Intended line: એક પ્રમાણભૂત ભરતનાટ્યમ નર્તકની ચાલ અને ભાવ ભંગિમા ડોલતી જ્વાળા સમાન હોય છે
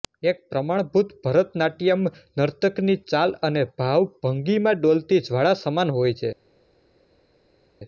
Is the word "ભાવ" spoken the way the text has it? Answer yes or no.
yes